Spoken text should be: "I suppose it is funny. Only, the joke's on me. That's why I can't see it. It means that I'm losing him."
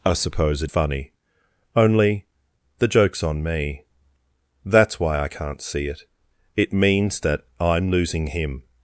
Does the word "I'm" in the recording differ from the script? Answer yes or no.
no